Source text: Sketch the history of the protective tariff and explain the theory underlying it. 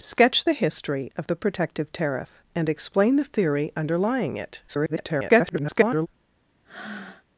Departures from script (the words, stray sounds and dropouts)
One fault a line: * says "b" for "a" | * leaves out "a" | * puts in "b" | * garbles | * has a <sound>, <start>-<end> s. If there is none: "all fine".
* garbles
* has a breath, 6.6-7.2 s